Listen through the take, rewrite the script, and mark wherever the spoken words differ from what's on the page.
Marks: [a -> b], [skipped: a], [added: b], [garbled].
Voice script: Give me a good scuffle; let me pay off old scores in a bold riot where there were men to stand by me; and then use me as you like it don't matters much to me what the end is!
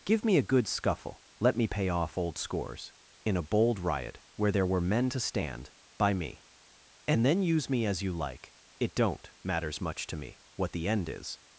Give me a good scuffle; let me pay off old scores in a bold riot where there were men to stand by me; and then use me as you like it don't matters much to me what the end is!